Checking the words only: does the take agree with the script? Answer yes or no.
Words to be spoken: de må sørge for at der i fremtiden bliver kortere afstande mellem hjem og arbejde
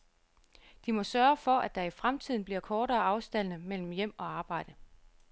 yes